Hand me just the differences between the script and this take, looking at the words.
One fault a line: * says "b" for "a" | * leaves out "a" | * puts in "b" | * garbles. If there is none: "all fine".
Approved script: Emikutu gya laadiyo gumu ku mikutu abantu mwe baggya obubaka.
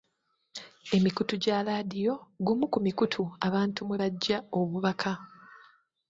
all fine